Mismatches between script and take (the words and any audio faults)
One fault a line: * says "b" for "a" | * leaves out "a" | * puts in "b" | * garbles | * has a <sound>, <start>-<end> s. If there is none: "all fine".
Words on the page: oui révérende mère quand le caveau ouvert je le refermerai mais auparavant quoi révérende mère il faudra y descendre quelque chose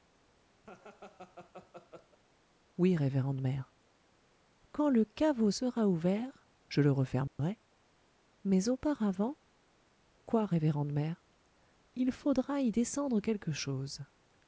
* has a laugh, 0.6-2.2 s
* puts in "sera"
* has a dropout, 7.3-7.4 s